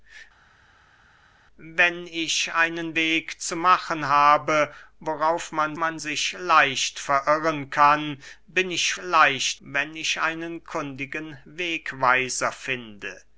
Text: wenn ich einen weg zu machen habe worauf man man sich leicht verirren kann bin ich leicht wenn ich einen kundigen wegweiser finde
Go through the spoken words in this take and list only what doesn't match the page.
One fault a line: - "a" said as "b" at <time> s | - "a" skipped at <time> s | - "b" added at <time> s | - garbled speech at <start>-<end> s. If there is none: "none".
none